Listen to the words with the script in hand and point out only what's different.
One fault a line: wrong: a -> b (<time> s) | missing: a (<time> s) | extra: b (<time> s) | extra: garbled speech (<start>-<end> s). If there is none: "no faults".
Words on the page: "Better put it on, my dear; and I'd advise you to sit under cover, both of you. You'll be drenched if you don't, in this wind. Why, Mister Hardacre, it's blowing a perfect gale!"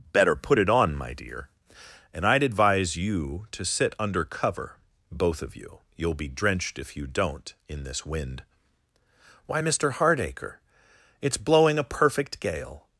no faults